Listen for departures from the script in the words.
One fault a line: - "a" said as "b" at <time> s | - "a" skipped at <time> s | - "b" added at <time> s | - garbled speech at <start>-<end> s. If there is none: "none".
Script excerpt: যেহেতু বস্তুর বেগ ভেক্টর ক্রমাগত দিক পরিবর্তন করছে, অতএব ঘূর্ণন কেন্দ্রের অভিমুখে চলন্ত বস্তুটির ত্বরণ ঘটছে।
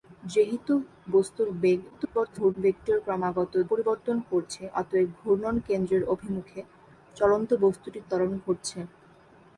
- garbled speech at 1.9-2.5 s
- "দিক" skipped at 3.5 s